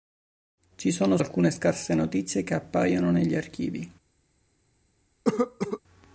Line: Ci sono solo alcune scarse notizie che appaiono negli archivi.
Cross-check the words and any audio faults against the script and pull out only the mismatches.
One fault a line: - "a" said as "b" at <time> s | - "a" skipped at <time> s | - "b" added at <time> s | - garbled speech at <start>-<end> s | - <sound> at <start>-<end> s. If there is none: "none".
- "solo" skipped at 1.2 s
- cough at 5.2-5.8 s